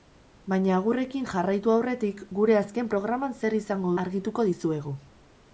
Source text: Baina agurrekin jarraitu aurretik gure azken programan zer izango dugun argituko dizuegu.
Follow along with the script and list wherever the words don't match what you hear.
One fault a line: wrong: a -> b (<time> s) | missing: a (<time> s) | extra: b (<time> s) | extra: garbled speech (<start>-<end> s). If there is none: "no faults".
missing: dugun (3.9 s)